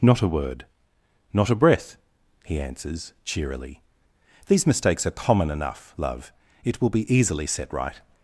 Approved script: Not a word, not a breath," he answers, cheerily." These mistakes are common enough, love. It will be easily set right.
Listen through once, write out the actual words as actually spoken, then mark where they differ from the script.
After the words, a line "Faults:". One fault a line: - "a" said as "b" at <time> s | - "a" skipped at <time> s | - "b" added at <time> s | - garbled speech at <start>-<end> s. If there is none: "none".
Not a word, not a breath," he answers, cheerily." These mistakes are common enough, love. It will be easily set right.
Faults:
none